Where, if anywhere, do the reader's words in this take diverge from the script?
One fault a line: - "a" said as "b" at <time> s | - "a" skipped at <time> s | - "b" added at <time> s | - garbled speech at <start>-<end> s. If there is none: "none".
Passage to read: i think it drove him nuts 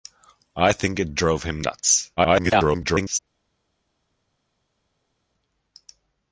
- garbled speech at 2.2-3.2 s